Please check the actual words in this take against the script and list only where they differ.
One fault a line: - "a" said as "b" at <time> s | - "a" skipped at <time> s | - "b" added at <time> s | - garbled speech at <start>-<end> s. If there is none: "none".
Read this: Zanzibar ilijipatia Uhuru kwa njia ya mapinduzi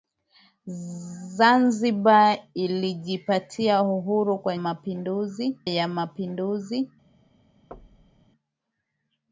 - "njia" said as "mapinduzi" at 4.6 s